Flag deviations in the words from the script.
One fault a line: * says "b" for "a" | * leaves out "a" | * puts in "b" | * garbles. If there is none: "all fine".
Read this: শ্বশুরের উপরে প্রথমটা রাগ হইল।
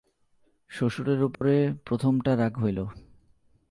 all fine